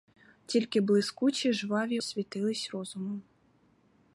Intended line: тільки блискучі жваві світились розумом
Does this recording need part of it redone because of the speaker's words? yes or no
no